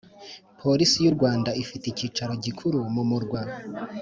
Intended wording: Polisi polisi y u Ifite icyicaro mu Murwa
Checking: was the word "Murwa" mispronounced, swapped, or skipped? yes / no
no